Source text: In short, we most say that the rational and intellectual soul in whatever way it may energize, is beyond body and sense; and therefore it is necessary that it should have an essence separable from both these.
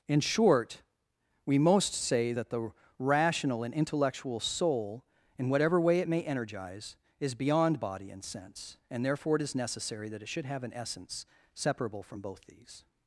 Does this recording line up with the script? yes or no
yes